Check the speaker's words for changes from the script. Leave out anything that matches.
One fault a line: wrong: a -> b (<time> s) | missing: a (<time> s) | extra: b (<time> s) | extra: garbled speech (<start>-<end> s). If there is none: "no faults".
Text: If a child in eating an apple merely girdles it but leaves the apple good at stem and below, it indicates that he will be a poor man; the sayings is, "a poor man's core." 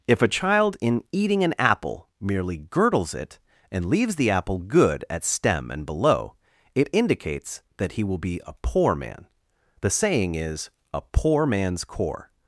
wrong: but -> and (3.7 s)
wrong: sayings -> saying (9.9 s)